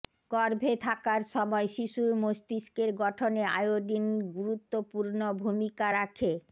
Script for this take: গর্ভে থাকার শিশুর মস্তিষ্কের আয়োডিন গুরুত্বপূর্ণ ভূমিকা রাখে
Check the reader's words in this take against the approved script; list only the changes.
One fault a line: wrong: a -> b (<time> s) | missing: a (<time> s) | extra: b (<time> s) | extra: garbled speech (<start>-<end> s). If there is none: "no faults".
extra: সময় (1.3 s)
extra: গঠনে (3.0 s)